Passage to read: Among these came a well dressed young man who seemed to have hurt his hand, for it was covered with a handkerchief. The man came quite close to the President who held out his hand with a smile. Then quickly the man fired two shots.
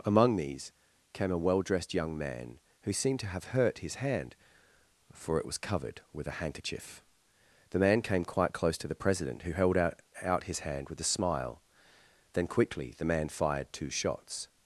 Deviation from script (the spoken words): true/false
true